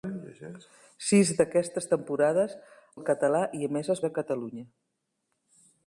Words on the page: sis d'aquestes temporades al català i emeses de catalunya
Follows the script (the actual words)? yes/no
yes